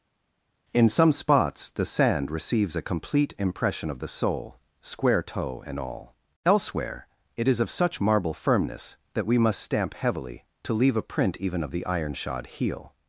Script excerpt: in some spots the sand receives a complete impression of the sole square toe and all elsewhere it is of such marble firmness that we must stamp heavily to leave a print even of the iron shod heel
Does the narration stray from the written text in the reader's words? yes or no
no